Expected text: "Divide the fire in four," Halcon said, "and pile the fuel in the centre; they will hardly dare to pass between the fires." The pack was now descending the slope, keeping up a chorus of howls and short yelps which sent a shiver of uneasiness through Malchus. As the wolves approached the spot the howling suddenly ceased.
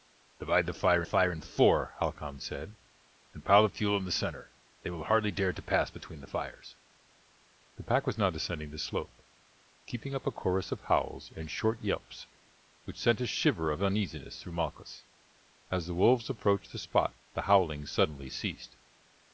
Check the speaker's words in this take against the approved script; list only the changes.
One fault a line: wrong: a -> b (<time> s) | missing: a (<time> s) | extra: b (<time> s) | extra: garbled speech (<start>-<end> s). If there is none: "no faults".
extra: fire (1.0 s)